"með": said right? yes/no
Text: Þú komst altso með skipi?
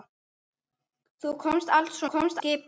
no